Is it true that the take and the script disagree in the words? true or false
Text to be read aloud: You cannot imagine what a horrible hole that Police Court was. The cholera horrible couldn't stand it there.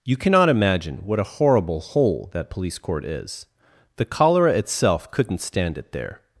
true